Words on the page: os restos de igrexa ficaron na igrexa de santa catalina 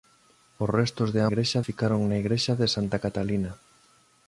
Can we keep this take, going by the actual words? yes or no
yes